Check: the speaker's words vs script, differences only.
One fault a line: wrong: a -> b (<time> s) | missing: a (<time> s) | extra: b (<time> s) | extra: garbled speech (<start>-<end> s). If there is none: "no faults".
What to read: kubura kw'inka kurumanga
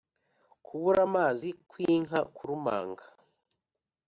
extra: amazi (1.1 s)